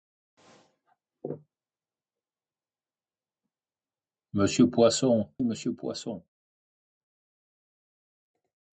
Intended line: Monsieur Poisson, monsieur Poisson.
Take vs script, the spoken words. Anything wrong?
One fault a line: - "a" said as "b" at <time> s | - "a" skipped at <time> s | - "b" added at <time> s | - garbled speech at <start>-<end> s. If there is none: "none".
none